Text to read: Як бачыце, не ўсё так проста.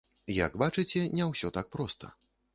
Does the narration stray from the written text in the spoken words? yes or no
no